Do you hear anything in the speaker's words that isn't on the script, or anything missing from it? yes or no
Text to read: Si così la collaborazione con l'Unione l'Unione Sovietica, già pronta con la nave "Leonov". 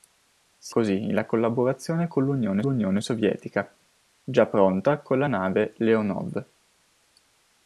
no